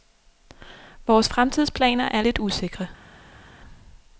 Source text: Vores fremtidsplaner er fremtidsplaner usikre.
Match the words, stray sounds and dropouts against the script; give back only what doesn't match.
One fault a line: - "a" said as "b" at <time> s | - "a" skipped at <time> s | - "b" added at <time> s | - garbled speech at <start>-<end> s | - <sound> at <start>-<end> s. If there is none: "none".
- "fremtidsplaner" said as "lidt" at 2.2 s